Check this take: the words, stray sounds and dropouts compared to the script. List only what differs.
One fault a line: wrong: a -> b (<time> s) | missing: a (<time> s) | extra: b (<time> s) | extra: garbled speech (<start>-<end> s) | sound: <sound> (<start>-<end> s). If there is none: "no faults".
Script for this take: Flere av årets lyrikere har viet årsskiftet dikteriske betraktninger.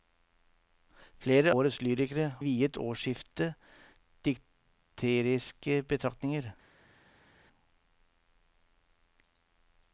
missing: av (1.5 s)
missing: har (2.3 s)